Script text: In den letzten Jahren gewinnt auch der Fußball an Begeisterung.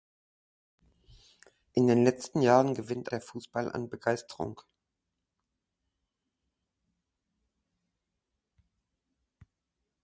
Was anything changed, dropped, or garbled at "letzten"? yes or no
no